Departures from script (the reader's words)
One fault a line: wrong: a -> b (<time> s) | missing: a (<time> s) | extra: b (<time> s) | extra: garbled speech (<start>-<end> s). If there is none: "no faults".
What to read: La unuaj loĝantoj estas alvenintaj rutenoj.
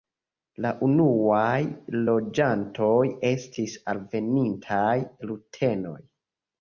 wrong: estas -> estis (3.3 s)